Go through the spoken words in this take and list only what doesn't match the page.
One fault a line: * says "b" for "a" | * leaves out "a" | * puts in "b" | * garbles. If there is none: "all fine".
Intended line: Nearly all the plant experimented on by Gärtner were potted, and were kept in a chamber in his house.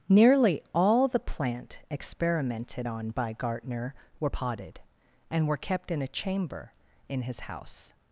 all fine